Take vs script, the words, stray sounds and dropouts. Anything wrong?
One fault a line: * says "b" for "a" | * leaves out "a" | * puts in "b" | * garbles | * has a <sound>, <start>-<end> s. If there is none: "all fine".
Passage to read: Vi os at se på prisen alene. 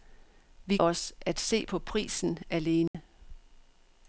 * has a dropout, 2.9-2.9 s